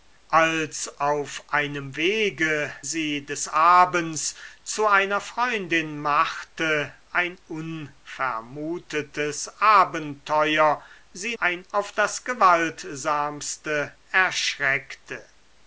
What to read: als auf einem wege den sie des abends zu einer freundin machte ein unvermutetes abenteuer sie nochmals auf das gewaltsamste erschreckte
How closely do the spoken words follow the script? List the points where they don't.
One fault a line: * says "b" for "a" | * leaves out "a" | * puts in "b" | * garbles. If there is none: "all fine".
* leaves out "den"
* says "ein" for "nochmals"